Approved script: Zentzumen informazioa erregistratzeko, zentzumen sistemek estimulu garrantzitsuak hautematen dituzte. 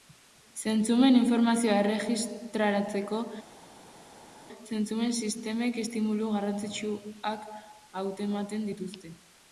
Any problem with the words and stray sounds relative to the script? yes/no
no